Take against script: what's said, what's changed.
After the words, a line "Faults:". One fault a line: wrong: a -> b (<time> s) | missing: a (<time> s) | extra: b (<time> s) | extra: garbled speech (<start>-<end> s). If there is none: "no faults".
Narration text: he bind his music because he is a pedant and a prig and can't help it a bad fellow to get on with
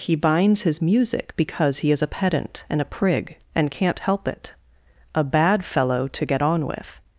he binds his music because he is a pedant and a prig and can't help it a bad fellow to get on with
Faults:
wrong: bind -> binds (0.1 s)